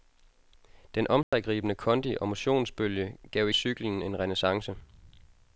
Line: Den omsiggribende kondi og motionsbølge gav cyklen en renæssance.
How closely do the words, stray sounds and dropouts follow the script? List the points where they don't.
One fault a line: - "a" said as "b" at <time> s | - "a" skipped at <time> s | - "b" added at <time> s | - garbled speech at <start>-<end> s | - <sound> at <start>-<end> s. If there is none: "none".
- dropout at 1.2-1.3 s